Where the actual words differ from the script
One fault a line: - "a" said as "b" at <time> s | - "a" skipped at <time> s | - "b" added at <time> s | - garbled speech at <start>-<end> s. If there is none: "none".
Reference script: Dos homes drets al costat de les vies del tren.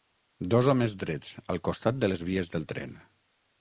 none